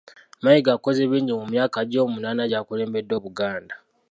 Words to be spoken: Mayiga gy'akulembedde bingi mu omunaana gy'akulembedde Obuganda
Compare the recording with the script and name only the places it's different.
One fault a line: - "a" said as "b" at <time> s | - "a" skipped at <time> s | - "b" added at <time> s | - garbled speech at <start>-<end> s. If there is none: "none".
- "gy'akulembedde" said as "akoze" at 0.8 s
- "myaka gye" added at 1.5 s